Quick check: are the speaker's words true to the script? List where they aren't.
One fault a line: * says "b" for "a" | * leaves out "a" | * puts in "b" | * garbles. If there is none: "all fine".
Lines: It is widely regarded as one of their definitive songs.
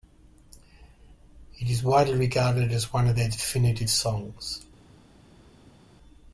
all fine